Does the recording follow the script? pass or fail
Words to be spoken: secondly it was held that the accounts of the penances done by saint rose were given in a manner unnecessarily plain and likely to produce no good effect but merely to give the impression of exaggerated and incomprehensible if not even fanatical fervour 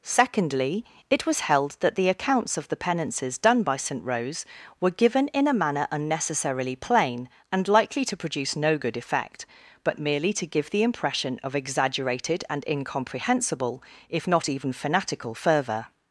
pass